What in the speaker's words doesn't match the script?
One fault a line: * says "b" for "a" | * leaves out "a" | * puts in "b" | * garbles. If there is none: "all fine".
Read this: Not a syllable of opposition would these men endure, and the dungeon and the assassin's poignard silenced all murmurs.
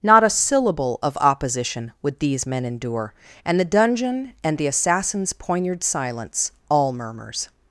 * says "silence" for "silenced"